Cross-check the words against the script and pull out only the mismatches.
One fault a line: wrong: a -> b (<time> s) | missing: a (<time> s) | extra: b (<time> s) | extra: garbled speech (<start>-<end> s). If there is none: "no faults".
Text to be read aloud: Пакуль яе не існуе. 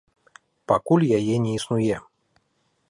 no faults